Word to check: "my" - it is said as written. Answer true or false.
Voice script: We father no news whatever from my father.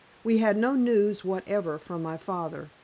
true